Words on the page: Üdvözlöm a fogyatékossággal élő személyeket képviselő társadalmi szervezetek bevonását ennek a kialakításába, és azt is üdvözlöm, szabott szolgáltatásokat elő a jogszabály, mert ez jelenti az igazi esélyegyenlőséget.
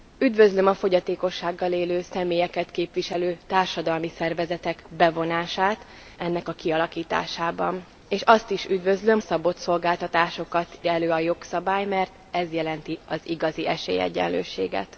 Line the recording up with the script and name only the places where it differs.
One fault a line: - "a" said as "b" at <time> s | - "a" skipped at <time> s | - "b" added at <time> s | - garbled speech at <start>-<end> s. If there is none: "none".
none